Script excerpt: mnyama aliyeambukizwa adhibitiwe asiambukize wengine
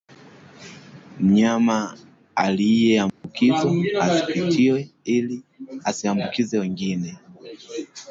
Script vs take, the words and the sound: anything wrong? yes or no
yes